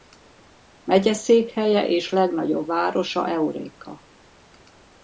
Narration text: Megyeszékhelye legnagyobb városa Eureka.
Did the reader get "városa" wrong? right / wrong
right